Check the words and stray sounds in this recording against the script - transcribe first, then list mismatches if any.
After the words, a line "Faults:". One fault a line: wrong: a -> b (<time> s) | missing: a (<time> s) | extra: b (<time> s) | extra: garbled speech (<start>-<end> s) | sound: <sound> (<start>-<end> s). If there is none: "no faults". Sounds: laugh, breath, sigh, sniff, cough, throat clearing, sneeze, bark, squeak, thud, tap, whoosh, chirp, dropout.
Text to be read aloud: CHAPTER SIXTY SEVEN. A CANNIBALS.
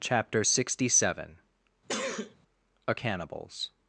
CHAPTER SIXTY SEVEN. A CANNIBALS.
Faults:
sound: sneeze (1.9-2.4 s)